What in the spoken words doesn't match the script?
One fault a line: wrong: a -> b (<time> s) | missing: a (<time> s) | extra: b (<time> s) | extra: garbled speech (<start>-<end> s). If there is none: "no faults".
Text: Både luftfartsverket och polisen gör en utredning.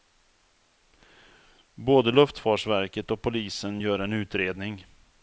no faults